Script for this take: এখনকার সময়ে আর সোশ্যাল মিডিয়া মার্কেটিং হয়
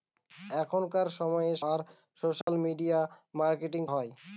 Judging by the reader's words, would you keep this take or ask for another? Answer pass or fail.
pass